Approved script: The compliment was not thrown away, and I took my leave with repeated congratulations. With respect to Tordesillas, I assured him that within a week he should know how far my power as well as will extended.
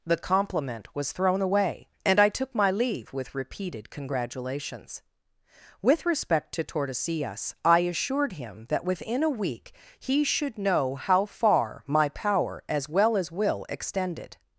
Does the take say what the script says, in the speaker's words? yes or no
no